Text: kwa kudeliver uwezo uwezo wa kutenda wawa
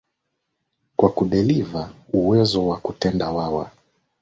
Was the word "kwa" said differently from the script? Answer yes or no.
no